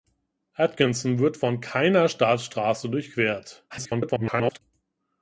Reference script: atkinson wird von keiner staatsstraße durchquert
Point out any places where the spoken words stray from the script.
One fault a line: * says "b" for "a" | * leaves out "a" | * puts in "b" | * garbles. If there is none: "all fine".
* garbles